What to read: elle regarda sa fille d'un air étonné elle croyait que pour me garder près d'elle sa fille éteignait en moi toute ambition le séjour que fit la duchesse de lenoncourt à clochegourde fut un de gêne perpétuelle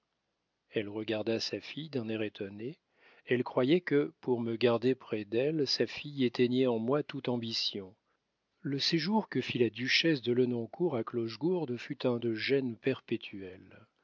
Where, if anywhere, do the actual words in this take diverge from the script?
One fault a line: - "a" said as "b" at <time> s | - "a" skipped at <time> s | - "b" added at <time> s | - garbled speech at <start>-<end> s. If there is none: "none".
none